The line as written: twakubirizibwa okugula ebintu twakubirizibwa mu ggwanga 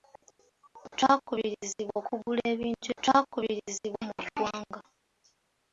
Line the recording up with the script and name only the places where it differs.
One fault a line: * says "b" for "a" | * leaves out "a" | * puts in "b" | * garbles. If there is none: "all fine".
all fine